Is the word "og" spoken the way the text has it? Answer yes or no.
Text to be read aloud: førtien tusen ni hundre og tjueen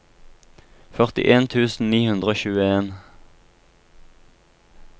yes